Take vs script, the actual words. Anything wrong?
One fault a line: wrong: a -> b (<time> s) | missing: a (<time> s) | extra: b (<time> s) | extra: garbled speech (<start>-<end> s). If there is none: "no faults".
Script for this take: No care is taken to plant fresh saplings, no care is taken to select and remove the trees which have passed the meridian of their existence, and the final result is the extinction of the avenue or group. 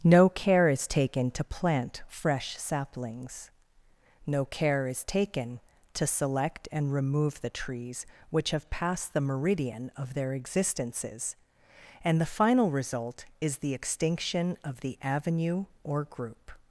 wrong: existence -> existences (10.3 s)